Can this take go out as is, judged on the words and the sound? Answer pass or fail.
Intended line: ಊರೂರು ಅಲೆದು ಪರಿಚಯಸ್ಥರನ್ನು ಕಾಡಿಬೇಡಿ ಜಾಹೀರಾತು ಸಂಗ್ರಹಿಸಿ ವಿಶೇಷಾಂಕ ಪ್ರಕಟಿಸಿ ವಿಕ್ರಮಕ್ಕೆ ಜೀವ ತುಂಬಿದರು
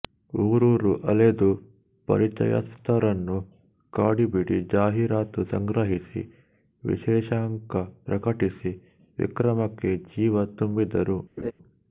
fail